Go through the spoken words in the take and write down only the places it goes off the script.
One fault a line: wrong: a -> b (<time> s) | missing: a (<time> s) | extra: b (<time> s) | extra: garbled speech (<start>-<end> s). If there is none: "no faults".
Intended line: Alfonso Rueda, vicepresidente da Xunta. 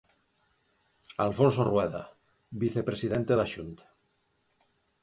no faults